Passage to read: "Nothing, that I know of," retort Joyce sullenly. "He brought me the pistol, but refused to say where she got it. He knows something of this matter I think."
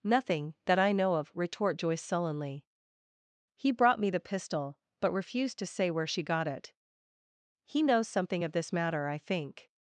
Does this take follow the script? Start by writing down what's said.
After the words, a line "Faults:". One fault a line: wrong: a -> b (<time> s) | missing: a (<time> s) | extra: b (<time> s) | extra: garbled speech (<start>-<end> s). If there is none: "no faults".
"Nothing, that I know of," retort Joyce sullenly. "He brought me the pistol, but refused to say where she got it. He knows something of this matter I think."
Faults:
no faults